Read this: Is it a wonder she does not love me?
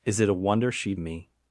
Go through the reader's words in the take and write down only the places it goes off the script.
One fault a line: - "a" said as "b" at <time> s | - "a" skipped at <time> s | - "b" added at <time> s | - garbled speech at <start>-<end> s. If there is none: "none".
- "does not love" skipped at 0.9 s